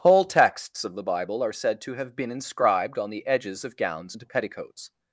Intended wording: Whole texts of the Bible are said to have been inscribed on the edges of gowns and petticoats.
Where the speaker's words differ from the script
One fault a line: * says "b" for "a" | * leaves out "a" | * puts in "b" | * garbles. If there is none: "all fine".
all fine